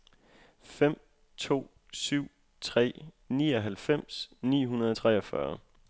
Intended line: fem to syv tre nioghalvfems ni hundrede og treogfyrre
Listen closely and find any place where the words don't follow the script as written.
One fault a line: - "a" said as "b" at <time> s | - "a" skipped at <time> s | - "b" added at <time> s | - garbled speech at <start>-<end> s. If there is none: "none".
none